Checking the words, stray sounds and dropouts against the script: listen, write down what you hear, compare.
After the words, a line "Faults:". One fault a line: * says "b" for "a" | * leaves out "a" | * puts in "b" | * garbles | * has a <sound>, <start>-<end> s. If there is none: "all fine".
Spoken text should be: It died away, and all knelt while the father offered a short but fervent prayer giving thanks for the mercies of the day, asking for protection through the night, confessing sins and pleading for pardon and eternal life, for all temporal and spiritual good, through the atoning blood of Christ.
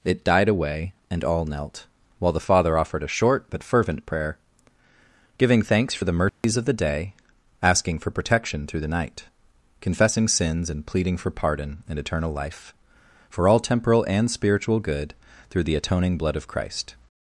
It died away, and all knelt while the father offered a short but fervent prayer giving thanks for the mercies of the day, asking for protection through the night, confessing sins and pleading for pardon and eternal life, for all temporal and spiritual good, through the atoning blood of Christ.
Faults:
* has a dropout, 6.3-6.4 s